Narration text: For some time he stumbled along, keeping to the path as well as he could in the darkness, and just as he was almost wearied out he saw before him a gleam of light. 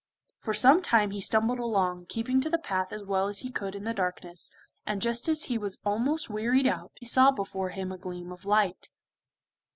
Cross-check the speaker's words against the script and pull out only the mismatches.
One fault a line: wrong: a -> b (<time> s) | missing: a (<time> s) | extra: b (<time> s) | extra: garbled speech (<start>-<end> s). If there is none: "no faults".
missing: he (7.0 s)